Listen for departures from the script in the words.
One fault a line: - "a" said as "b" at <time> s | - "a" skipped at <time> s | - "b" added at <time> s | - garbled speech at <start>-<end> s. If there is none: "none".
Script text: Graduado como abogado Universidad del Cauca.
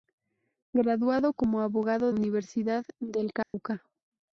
none